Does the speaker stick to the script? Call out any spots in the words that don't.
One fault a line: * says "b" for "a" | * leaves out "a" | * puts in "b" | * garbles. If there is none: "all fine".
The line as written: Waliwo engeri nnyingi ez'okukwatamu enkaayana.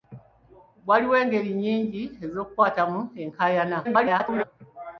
* garbles